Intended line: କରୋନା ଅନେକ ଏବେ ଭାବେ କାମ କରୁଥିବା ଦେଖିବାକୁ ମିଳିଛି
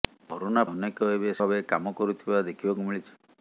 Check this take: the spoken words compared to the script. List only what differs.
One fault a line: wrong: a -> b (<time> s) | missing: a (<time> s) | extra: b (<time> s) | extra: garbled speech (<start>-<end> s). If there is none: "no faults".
no faults